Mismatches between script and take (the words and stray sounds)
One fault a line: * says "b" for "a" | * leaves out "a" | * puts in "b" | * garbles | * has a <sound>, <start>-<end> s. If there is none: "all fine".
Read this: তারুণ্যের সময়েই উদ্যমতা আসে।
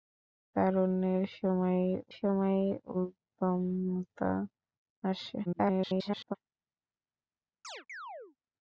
* puts in "সময়েই"
* garbles
* has a chirp, 7.6-8.4 s